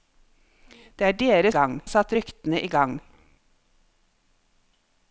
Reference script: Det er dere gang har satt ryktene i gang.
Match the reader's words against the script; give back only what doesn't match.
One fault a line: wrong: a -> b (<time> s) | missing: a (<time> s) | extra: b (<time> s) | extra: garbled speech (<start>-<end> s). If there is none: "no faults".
no faults